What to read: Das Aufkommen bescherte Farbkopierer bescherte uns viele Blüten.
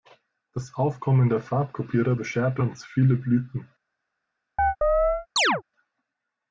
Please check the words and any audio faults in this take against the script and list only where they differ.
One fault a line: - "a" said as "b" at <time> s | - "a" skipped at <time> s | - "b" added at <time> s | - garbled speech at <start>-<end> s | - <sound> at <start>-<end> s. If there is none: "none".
- "bescherte" said as "der" at 1.3 s
- chirp at 4.6-5.6 s